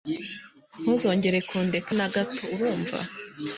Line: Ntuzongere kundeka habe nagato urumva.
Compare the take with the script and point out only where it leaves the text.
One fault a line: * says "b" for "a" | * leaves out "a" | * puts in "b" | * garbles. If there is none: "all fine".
* leaves out "habe"